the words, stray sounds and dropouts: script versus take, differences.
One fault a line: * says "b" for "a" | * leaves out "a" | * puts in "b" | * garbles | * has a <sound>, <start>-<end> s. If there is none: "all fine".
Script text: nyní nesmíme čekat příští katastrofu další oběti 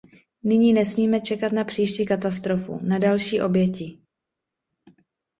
* puts in "na"
* puts in "na"